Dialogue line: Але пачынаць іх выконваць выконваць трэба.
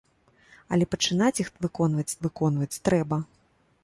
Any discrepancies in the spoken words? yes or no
no